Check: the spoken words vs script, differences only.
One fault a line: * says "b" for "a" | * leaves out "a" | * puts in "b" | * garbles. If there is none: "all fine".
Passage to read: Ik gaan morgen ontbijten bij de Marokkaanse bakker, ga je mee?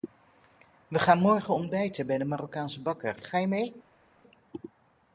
* says "We" for "Ik"